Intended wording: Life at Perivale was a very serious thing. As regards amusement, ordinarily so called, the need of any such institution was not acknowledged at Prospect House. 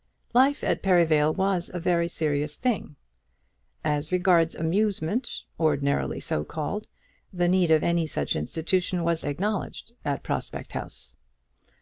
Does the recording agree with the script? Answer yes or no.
no